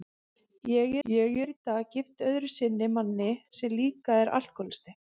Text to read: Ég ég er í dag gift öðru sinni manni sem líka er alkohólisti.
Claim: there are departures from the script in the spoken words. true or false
false